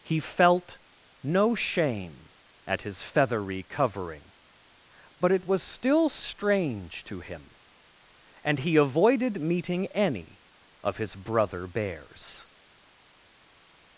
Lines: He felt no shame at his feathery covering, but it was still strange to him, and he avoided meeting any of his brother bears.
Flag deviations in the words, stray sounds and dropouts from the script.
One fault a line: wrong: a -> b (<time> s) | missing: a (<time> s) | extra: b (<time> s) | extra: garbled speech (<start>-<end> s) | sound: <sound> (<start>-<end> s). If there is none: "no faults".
no faults